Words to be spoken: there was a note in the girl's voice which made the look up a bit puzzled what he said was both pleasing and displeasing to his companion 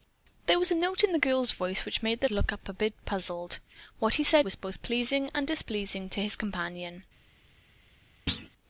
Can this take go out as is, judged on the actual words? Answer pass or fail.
pass